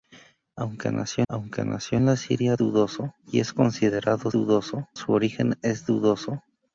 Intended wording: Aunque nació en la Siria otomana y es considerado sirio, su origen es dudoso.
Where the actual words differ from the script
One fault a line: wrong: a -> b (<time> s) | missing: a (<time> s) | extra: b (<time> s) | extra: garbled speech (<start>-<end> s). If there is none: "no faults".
extra: aunque nació (1.3 s)
wrong: otomana -> dudoso (2.6 s)
wrong: sirio -> dudoso (4.3 s)